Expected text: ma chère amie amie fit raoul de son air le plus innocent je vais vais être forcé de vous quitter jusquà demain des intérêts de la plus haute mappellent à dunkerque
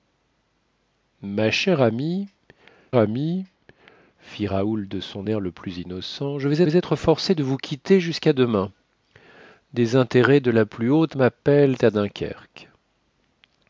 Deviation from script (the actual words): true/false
false